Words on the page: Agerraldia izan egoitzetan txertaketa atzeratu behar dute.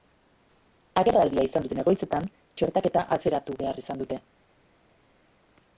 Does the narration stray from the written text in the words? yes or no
yes